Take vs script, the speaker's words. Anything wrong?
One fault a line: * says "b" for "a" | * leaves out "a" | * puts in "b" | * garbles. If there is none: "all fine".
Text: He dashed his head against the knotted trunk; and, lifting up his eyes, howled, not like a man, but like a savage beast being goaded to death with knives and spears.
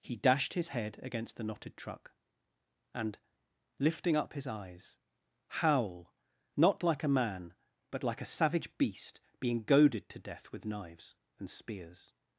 * says "truck" for "trunk"
* says "howl" for "howled"